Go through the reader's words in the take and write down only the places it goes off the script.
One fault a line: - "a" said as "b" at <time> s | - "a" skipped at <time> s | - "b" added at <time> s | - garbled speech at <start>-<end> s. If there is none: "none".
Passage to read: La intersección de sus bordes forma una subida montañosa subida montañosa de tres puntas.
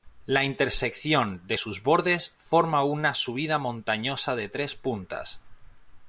- "subida montañosa" skipped at 4.4 s